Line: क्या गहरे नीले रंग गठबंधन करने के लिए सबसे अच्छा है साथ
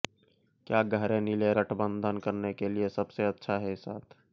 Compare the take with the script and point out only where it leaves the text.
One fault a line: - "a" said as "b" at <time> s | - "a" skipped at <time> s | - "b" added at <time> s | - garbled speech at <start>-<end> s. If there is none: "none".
- "रंग" skipped at 1.5 s